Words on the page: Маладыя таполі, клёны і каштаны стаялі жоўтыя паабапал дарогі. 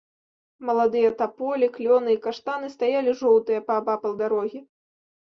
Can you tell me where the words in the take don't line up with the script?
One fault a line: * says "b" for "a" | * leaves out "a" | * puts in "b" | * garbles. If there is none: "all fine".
all fine